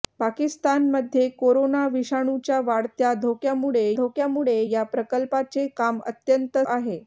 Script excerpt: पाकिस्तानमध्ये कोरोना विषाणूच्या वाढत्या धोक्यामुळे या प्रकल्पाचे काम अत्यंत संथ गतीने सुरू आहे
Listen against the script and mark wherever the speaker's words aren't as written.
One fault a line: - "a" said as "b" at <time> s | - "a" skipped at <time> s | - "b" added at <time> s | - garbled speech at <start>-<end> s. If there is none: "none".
- "धोक्यामुळे" added at 4.0 s
- "संथ गतीने सुरू" skipped at 6.6 s